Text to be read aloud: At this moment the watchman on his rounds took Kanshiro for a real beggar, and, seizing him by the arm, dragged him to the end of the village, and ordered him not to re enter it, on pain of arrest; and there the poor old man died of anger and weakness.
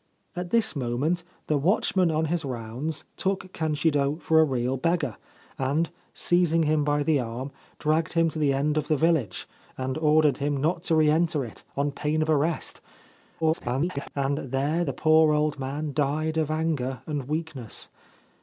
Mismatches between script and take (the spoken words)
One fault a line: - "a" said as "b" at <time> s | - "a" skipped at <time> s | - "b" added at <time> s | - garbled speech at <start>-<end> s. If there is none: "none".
- garbled speech at 13.4-14.1 s